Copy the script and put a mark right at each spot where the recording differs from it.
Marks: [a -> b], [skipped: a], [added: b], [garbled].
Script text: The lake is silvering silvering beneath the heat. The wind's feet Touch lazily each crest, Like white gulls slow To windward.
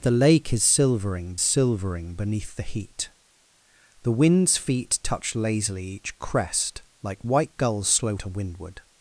The lake is silvering silvering beneath the heat. The wind's feet Touch lazily each crest, Like white gulls slow To windward.